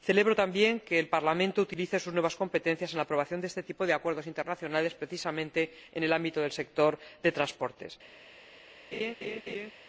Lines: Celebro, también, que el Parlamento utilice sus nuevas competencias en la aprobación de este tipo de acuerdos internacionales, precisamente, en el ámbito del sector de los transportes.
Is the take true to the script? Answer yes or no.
yes